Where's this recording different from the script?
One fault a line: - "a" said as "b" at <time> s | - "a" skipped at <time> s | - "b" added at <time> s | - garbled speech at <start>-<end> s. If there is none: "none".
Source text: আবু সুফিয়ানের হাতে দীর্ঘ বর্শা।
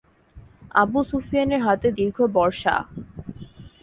none